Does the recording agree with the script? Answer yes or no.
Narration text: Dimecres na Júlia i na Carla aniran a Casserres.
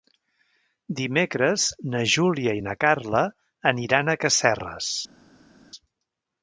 yes